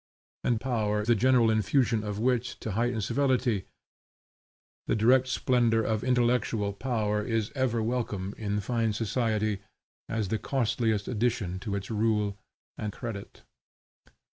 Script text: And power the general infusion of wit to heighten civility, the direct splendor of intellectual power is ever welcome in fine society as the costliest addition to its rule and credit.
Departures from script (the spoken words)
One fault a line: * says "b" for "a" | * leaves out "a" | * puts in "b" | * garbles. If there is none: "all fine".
all fine